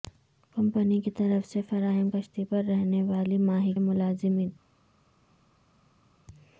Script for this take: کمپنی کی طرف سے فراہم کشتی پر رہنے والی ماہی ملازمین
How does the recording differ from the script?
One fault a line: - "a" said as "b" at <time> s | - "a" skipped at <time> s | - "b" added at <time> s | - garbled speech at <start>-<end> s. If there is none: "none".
none